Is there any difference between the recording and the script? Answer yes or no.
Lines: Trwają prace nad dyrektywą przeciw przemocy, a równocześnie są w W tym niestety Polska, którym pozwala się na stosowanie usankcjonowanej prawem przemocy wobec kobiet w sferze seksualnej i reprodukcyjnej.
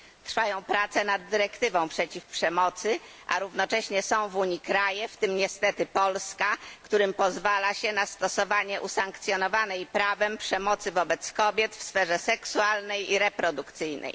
yes